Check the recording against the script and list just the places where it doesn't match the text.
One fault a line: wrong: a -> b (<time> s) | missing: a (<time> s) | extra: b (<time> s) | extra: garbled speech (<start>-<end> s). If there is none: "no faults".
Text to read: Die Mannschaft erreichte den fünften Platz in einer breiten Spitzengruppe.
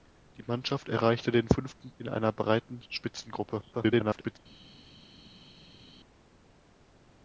missing: Platz (1.9 s)
extra: garbled speech (3.7-4.4 s)